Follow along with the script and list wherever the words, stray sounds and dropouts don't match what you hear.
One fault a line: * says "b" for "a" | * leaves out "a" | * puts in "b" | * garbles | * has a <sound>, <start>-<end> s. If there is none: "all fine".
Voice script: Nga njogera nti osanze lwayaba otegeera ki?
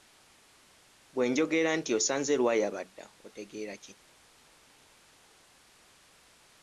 * says "Bwe" for "Nga"
* puts in "dda"